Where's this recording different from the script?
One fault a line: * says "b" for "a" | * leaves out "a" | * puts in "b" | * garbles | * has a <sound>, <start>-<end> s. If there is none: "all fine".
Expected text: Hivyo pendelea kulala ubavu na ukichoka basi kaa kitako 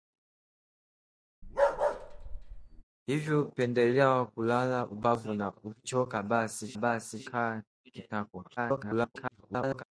* has a bark, 1.4-2.8 s
* puts in "basi"
* garbles